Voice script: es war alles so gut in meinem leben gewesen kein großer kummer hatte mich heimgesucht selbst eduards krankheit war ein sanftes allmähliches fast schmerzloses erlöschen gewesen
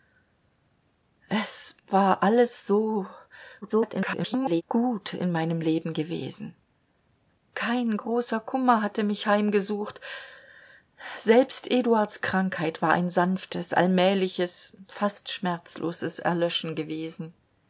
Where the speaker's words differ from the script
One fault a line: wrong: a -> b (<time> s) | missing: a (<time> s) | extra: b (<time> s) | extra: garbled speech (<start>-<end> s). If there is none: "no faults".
extra: garbled speech (3.6-4.6 s)